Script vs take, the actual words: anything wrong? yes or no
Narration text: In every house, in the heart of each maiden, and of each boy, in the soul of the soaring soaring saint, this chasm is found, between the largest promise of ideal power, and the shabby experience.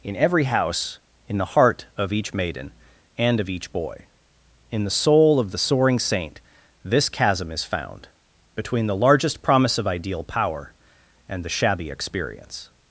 yes